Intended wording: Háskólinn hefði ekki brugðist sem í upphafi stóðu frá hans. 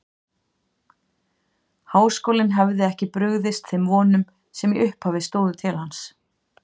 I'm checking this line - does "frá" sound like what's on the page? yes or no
no